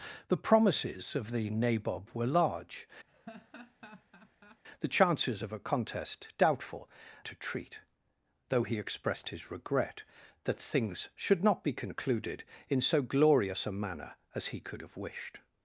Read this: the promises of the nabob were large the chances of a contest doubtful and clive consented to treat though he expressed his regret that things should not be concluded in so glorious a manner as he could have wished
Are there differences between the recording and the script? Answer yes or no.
yes